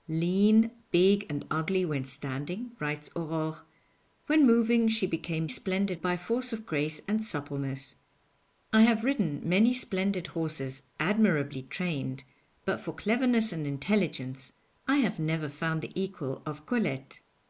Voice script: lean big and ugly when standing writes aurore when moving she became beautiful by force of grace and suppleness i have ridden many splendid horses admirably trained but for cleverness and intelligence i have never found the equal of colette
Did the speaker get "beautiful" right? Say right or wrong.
wrong